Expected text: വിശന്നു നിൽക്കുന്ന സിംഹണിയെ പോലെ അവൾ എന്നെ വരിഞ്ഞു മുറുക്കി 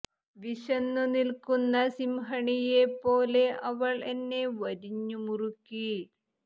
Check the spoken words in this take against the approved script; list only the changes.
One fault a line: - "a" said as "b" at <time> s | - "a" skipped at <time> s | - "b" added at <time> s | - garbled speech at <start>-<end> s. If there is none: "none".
none